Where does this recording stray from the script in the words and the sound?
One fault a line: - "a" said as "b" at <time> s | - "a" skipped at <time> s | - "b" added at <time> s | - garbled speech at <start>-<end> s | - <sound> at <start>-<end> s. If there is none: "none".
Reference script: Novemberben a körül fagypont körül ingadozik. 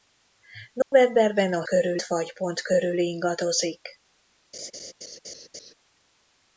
- dropout at 0.8-0.9 s
- laugh at 4.5-5.7 s